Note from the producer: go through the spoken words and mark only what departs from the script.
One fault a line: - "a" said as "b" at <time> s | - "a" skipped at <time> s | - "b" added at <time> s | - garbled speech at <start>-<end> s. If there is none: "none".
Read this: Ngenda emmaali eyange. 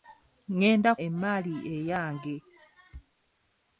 none